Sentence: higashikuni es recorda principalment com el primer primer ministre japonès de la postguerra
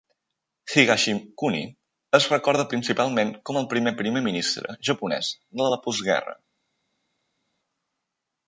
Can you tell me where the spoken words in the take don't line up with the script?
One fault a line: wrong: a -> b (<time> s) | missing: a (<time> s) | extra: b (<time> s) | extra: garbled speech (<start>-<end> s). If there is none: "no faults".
no faults